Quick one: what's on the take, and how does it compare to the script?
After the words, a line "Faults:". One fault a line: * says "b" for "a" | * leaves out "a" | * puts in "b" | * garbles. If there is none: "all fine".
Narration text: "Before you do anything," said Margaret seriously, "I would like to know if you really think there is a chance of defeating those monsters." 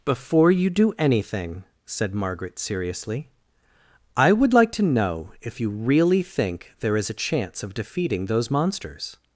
"Before you do anything," said Margaret seriously, "I would like to know if you really think there is a chance of defeating those monsters."
Faults:
all fine